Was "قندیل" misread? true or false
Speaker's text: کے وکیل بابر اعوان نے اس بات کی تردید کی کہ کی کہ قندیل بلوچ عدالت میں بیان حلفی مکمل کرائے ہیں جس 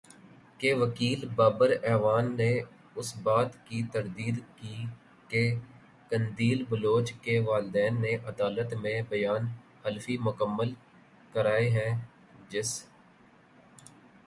true